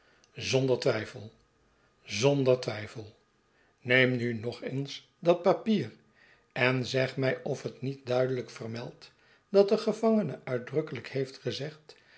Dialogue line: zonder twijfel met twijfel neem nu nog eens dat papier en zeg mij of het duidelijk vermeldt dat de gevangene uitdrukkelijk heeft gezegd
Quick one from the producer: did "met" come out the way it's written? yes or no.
no